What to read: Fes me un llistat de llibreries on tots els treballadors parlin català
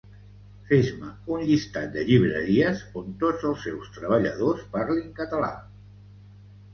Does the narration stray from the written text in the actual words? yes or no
yes